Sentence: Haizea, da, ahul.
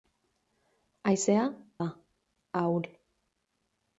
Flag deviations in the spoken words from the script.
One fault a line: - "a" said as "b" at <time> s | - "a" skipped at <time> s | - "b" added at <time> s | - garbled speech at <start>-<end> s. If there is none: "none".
none